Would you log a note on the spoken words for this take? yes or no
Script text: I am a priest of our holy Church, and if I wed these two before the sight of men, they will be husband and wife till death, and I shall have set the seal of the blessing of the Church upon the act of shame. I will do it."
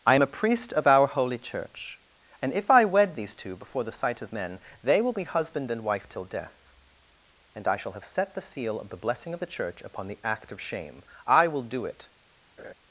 no